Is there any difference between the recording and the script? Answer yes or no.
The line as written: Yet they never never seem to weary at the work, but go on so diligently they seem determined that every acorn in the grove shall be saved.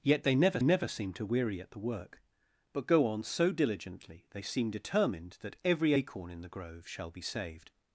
no